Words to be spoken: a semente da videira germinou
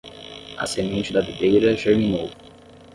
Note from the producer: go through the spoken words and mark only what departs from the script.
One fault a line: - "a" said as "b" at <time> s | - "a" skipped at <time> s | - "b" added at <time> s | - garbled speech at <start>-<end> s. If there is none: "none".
none